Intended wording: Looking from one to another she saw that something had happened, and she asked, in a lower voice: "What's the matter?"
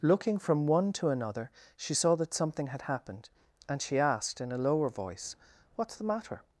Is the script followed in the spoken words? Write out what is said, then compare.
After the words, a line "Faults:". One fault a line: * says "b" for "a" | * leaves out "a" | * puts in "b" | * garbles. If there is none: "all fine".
Looking from one to another she saw that something had happened, and she asked, in a lower voice: "What's the matter?"
Faults:
all fine